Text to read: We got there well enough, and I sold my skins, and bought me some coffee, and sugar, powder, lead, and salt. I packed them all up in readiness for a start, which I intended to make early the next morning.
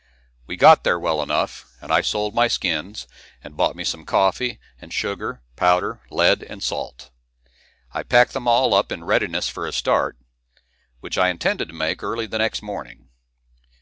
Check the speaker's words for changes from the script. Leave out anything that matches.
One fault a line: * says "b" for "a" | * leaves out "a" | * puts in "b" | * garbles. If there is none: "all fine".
all fine